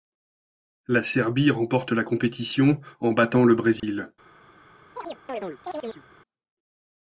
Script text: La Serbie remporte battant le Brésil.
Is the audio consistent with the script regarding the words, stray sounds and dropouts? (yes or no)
no